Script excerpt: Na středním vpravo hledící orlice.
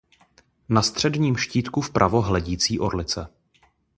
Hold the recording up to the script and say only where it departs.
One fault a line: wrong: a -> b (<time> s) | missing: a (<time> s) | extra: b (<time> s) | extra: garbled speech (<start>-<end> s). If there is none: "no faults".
extra: štítku (1.4 s)